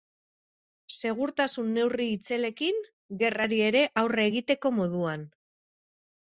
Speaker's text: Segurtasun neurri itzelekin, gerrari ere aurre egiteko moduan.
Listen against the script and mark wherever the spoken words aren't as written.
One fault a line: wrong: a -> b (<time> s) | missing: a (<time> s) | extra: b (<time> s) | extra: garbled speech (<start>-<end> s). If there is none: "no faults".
no faults